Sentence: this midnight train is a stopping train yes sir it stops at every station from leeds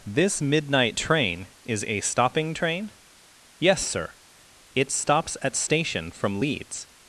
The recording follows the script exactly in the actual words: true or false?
false